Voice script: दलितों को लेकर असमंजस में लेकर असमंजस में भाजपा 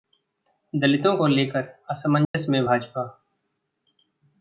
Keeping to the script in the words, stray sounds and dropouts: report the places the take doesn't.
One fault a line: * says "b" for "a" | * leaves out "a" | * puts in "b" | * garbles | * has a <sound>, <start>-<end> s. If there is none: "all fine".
* has a dropout, 2.2-2.3 s
* leaves out "लेकर असमंजस में"